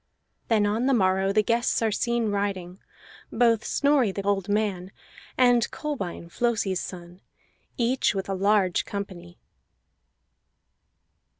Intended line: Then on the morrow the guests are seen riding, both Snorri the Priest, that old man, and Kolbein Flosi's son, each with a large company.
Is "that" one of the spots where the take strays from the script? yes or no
yes